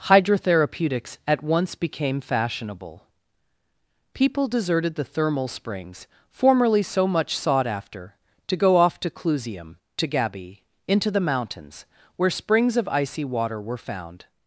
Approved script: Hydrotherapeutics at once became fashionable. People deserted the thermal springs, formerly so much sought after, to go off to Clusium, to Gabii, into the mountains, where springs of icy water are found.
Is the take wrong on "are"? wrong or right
wrong